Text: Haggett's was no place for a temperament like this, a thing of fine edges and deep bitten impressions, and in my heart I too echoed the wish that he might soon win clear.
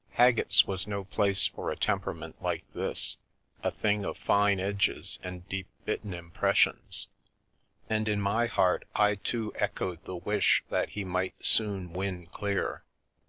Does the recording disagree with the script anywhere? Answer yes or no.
no